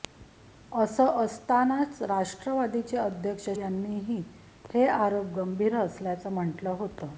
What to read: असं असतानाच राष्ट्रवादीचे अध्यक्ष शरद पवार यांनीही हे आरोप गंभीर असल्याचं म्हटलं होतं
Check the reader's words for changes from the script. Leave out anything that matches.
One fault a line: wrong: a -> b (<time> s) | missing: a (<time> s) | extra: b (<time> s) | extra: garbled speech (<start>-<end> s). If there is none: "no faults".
missing: शरद पवार (3.5 s)